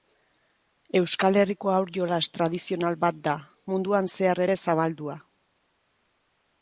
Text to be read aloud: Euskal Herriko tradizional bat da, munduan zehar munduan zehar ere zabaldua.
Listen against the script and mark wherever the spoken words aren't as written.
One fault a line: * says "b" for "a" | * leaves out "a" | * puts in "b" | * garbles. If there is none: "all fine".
* puts in "haur jolas"
* leaves out "munduan zehar"